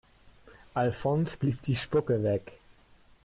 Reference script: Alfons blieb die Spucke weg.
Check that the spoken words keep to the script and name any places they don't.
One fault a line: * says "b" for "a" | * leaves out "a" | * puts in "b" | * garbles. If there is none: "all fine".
all fine